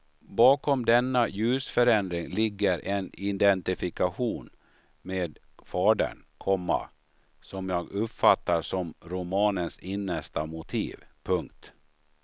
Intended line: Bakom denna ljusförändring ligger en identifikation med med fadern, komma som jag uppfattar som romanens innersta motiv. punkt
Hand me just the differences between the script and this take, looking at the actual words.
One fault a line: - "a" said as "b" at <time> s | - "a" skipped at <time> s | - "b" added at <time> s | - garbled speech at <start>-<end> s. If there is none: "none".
- "med" skipped at 5.4 s